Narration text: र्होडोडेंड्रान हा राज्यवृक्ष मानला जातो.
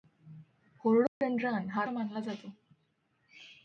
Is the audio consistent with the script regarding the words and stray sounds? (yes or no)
no